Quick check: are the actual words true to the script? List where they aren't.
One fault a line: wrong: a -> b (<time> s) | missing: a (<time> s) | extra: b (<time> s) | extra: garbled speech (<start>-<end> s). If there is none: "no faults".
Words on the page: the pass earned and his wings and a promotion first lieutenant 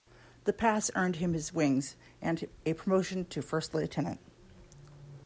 wrong: and -> him (1.2 s)
extra: to (3.3 s)